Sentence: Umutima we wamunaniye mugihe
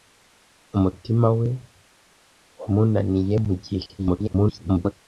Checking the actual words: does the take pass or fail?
fail